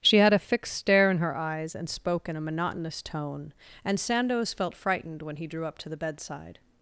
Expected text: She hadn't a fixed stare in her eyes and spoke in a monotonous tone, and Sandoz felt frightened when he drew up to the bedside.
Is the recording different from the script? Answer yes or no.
yes